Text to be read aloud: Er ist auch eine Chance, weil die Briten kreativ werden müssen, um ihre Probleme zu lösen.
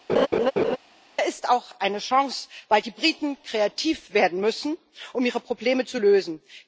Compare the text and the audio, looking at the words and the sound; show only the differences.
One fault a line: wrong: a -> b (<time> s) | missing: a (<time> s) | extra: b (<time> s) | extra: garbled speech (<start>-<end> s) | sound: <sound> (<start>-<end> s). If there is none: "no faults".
sound: laugh (0.1-0.8 s)